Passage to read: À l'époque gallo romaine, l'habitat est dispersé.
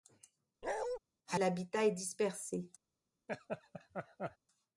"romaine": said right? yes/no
no